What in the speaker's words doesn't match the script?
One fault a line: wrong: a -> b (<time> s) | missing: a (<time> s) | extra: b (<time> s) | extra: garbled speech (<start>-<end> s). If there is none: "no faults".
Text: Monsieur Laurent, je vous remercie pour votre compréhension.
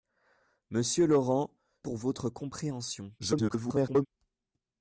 missing: je vous remercie (1.6 s)
extra: garbled speech (3.2-4.1 s)